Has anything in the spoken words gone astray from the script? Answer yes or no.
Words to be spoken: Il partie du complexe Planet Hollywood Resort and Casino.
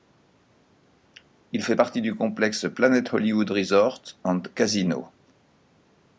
yes